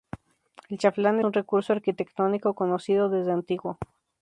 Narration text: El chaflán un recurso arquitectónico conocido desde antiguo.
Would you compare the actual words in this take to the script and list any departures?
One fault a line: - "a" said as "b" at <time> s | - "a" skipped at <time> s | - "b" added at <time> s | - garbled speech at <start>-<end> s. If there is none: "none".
none